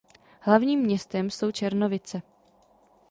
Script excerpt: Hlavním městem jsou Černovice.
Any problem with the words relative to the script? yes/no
no